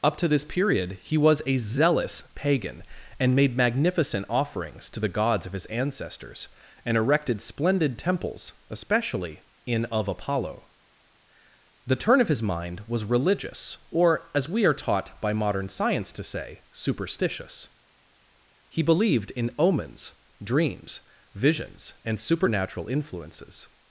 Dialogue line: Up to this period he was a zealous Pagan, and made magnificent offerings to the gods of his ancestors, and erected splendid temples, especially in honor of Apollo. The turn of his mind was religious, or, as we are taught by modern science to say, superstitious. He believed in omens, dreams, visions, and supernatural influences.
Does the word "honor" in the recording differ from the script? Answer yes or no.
yes